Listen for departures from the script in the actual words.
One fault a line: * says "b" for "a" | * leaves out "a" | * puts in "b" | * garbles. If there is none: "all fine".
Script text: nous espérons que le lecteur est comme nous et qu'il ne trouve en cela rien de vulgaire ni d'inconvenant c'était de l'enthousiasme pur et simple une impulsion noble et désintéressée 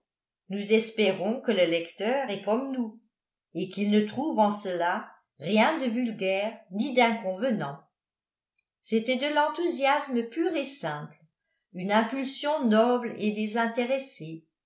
all fine